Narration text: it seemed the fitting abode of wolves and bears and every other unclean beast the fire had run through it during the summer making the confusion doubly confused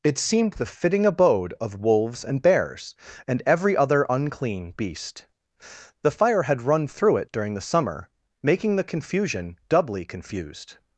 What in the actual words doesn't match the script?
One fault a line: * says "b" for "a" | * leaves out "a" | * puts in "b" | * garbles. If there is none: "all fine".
all fine